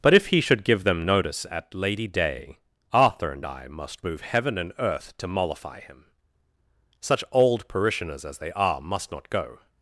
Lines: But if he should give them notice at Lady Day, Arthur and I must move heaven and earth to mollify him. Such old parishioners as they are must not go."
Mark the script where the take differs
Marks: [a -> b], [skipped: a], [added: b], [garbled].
But if he should give them notice at Lady Day, Arthur and I must move heaven and earth to mollify him. Such old parishioners as they are must not go."